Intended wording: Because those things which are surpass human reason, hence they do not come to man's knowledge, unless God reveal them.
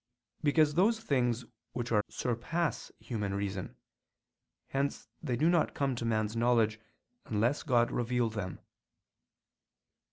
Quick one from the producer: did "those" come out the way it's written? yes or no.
yes